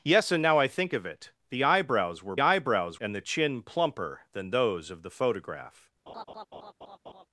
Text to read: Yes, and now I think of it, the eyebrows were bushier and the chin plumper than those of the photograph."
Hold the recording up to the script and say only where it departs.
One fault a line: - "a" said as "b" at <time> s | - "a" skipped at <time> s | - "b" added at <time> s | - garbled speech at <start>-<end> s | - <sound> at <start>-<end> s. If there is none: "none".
- "bushier" said as "eyebrows" at 2.4 s
- laugh at 6.1-7.3 s